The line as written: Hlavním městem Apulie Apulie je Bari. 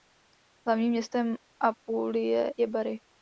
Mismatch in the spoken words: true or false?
true